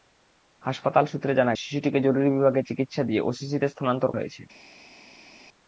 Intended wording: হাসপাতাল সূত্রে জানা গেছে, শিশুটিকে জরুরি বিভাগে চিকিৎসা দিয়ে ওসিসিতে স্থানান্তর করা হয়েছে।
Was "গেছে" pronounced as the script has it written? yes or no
no